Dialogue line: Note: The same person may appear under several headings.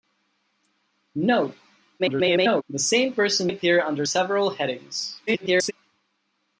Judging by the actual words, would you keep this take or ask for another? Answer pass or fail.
fail